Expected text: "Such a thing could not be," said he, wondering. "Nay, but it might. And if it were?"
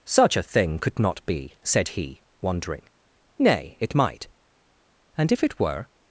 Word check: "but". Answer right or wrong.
wrong